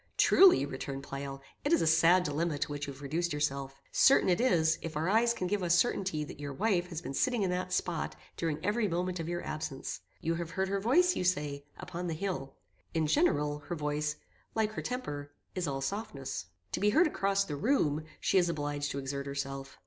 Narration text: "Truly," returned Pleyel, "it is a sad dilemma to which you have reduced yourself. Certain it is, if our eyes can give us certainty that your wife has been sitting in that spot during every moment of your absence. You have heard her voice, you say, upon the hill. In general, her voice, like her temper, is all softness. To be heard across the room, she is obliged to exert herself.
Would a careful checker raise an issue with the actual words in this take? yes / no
no